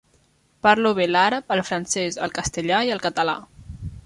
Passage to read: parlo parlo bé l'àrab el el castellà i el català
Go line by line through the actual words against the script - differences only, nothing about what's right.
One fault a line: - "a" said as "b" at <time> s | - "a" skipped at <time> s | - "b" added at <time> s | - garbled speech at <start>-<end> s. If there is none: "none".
- "parlo" skipped at 0.9 s
- "francès" added at 1.7 s